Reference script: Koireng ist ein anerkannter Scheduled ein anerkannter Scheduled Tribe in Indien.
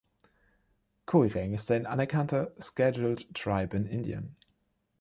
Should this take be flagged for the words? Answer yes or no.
yes